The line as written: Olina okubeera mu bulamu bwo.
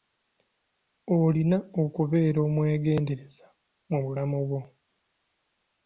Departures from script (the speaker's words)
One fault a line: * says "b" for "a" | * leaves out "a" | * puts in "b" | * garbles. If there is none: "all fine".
* puts in "omwegendereza"